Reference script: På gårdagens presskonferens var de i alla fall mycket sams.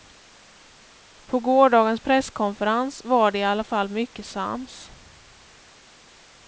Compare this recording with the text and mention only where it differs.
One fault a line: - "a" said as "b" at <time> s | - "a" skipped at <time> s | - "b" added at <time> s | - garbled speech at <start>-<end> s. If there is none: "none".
none